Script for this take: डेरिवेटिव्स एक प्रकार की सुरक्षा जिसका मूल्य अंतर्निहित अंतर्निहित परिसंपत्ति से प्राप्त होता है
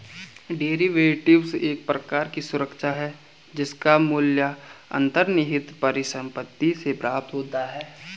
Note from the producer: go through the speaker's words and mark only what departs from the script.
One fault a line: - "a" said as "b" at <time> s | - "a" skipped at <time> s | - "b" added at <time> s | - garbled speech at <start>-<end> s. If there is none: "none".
- "है" added at 2.9 s
- "अंतर्निहित" skipped at 5.7 s